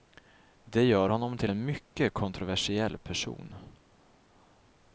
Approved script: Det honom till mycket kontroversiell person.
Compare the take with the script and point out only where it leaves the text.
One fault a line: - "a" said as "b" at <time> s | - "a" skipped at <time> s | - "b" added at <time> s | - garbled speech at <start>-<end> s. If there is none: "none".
- "gör" added at 0.8 s
- "en" added at 1.5 s